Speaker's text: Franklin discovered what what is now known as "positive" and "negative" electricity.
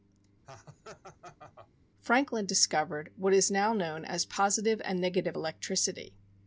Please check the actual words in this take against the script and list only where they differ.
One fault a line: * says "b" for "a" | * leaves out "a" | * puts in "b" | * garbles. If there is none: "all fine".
* leaves out "what"